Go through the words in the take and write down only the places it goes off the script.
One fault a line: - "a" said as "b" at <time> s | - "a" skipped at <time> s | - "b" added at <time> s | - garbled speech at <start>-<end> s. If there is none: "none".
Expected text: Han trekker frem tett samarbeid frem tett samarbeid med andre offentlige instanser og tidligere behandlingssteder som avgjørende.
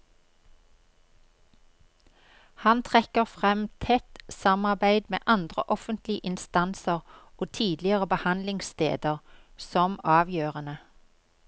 - "frem tett samarbeid" skipped at 5.0 s